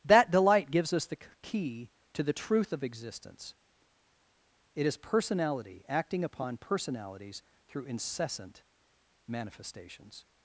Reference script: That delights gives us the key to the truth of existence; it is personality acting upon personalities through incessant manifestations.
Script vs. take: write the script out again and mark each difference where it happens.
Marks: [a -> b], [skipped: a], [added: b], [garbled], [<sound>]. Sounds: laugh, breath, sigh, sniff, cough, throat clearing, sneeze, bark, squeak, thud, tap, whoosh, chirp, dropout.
That [delights -> delight] gives us the key to the truth of existence; it is personality acting upon personalities through incessant manifestations.